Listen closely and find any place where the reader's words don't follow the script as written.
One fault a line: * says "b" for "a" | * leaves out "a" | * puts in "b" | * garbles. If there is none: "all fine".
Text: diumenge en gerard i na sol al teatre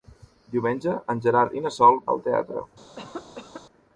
all fine